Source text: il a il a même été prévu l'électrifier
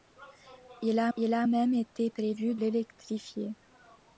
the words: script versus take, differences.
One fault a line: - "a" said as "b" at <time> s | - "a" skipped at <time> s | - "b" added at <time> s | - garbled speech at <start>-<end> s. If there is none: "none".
none